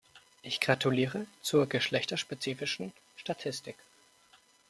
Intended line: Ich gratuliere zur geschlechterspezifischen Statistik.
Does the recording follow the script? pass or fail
pass